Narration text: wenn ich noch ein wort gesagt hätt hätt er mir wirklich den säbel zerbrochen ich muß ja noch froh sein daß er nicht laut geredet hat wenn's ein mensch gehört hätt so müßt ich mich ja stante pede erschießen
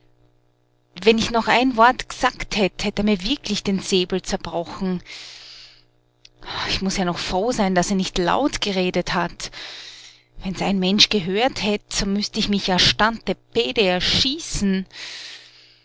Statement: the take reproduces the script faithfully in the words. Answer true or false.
true